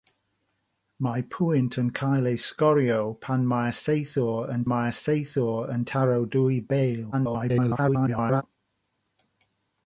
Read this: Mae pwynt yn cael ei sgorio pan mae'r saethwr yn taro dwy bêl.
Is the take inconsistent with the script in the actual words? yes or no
yes